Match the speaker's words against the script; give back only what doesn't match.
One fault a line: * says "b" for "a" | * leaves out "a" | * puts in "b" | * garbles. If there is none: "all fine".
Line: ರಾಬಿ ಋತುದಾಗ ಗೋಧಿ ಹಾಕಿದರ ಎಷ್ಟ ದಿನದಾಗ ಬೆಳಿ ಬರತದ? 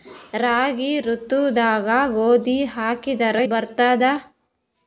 * leaves out "ಎಷ್ಟ ದಿನದಾಗ ಬೆಳಿ"